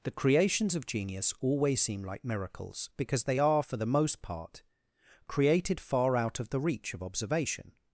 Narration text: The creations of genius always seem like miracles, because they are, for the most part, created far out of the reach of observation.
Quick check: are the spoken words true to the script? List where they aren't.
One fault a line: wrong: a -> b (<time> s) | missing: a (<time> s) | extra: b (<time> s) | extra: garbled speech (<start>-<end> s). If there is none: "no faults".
no faults